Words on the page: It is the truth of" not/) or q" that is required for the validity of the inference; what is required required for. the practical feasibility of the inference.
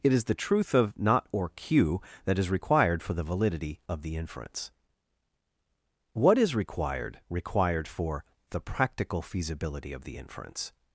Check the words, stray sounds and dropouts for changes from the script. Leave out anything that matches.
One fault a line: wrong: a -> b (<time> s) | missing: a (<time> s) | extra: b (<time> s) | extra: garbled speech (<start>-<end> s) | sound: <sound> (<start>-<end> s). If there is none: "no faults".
no faults